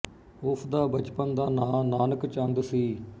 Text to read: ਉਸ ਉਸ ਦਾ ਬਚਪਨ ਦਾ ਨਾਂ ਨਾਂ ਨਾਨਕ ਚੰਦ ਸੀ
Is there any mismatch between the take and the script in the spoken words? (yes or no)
yes